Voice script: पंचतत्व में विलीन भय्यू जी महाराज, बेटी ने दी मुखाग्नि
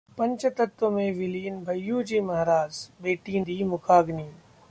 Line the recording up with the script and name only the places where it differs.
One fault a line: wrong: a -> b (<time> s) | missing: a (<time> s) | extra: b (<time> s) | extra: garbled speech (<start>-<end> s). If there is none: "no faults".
missing: ने (3.4 s)